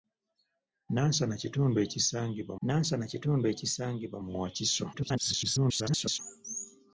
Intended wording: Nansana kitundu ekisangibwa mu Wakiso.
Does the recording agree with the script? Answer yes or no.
no